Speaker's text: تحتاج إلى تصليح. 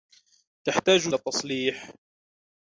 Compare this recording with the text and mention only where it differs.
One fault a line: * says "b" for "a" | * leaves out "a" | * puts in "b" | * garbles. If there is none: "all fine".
all fine